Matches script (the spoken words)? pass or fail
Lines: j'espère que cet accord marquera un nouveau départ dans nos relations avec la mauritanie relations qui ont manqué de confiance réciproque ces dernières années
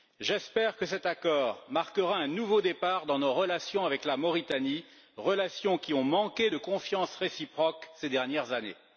pass